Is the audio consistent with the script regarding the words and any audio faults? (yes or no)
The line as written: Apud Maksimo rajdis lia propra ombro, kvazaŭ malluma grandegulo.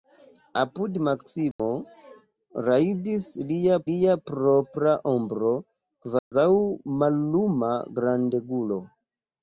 no